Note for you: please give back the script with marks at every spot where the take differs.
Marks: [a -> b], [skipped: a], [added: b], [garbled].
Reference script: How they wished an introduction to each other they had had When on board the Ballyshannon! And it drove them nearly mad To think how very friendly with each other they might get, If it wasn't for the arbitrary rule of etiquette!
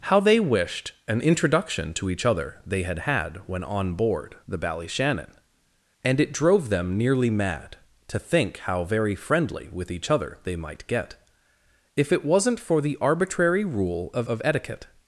How they wished an introduction to each other they had had When on board the Ballyshannon! And it drove them nearly mad To think how very friendly with each other they might get, If it wasn't for the arbitrary rule of [added: of] etiquette!